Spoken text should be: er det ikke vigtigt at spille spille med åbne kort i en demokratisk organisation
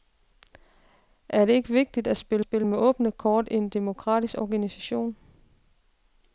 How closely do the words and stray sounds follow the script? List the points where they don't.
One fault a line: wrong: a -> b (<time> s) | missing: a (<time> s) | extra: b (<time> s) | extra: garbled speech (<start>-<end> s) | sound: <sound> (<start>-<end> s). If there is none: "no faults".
no faults